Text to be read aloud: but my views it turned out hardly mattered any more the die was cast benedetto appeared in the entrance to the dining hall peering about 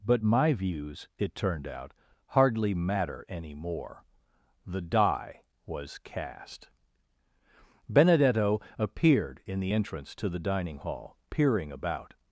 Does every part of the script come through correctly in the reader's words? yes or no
no